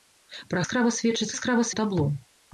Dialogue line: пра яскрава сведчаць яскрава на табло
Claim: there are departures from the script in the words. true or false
false